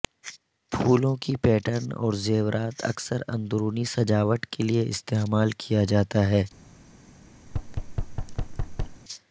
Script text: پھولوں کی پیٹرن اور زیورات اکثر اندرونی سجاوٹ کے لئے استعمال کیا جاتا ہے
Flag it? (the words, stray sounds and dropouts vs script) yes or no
yes